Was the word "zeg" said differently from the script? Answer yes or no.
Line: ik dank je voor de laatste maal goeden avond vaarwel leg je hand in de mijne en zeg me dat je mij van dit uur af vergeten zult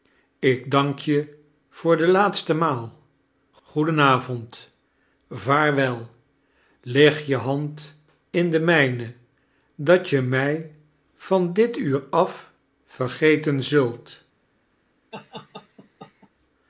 yes